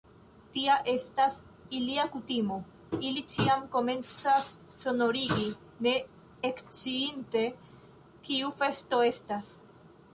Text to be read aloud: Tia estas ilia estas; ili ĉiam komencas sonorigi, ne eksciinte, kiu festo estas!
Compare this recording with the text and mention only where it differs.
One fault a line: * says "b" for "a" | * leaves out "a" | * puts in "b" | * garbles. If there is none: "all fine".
* says "kutimo" for "estas"